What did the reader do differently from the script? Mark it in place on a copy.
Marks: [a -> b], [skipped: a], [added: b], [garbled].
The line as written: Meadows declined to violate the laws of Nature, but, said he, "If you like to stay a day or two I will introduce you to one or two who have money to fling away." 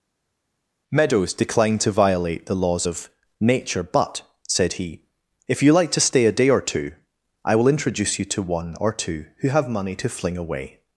Meadows declined to violate the laws of Nature, but, said he, "If you like to stay a day or two I will introduce you to one or two who have money to fling away."